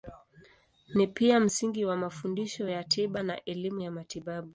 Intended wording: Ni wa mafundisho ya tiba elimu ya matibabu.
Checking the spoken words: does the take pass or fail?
fail